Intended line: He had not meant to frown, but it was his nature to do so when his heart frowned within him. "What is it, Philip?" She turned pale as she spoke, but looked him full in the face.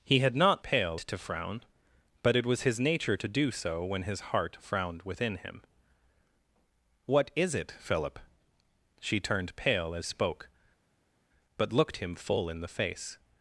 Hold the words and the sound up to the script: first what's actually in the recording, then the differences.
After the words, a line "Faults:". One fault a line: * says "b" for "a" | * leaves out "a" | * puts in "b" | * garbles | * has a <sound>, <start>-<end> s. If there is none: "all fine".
He had not pale to frown, but it was his nature to do so when his heart frowned within him. "What is it, Philip?" She turned pale as spoke, but looked him full in the face.
Faults:
* says "pale" for "meant"
* leaves out "she"